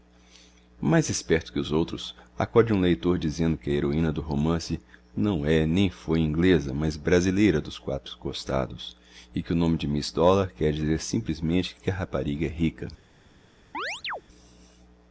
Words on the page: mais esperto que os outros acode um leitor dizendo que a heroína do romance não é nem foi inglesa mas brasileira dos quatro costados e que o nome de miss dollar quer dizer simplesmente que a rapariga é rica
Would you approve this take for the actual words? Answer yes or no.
yes